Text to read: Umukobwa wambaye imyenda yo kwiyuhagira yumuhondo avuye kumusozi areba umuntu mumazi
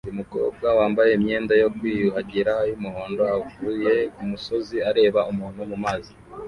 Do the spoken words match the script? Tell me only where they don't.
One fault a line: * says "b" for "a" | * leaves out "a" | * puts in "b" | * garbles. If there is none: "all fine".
all fine